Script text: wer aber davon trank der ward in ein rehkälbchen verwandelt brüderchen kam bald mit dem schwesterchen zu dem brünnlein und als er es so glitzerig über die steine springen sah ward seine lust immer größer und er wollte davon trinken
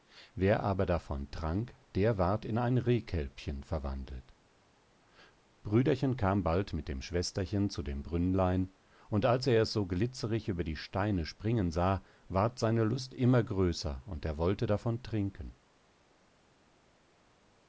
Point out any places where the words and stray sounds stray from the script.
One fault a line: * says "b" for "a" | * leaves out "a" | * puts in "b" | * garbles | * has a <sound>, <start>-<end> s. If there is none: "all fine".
all fine